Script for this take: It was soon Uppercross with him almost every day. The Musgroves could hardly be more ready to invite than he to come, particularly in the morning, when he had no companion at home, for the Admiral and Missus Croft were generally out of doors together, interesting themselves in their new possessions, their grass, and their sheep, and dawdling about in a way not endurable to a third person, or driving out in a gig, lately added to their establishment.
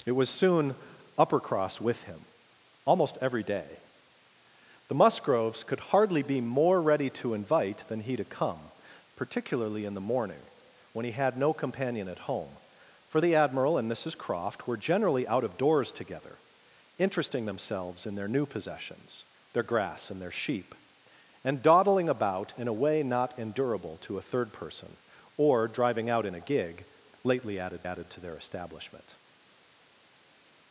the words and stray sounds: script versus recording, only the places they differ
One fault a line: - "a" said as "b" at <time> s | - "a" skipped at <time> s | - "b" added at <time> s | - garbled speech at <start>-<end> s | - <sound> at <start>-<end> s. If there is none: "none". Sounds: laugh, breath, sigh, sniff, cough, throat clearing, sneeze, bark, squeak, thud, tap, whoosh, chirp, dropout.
- "added" added at 27.8 s